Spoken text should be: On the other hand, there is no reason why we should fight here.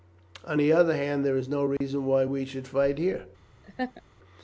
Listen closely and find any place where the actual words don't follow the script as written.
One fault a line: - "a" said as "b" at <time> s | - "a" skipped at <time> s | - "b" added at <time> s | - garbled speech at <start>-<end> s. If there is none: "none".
none